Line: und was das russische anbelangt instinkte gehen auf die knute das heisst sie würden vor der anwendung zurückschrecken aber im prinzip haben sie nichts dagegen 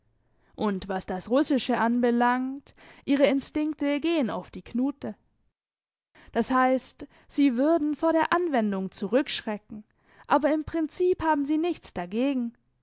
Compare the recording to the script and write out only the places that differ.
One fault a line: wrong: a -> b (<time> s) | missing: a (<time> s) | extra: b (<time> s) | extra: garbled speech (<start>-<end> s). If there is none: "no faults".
extra: ihre (3.0 s)